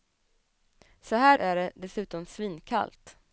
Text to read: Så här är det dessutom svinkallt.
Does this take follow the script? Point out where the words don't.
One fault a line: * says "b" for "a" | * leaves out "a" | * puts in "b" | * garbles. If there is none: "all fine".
all fine